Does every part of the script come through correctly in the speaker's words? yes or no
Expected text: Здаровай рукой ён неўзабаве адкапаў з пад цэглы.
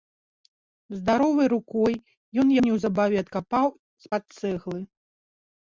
yes